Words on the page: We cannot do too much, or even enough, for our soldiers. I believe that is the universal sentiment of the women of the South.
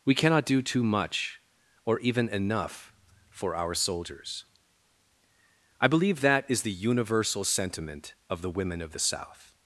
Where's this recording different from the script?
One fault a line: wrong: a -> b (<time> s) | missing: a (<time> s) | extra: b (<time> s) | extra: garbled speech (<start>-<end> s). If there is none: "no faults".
no faults